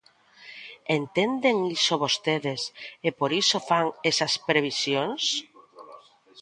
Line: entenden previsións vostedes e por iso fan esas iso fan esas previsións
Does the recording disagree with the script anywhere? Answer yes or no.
yes